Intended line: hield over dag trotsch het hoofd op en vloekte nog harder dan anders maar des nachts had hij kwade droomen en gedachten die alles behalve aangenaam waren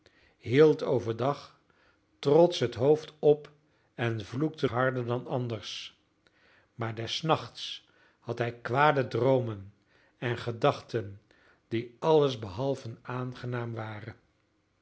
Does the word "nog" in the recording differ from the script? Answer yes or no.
yes